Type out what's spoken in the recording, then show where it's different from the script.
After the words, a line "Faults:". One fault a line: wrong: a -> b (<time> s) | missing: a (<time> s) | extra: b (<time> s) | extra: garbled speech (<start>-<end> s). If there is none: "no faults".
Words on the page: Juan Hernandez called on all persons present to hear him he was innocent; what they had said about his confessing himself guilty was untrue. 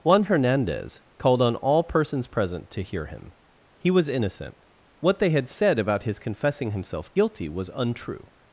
Juan Hernandez called on all persons present to hear him he was innocent; what they had said about his confessing himself guilty was untrue.
Faults:
no faults